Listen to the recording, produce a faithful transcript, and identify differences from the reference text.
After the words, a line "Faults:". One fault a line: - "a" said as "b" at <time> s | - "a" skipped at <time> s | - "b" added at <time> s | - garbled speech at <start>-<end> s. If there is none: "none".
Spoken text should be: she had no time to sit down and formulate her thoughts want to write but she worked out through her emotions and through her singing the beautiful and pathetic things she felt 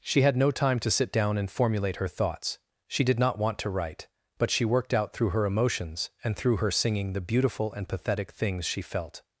she had no time to sit down and formulate her thoughts she did not want to write but she worked out through her emotions and through her singing the beautiful and pathetic things she felt
Faults:
- "she did not" added at 2.9 s